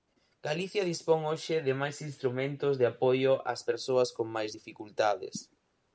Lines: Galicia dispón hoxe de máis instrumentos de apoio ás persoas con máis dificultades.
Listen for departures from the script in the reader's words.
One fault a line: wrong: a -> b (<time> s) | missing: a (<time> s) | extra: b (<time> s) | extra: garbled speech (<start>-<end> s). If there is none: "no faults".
no faults